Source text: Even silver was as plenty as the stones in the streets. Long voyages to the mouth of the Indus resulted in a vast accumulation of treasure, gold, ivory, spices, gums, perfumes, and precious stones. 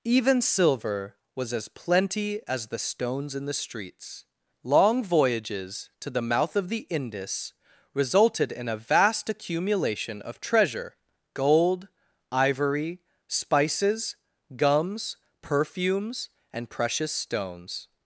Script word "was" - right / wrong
right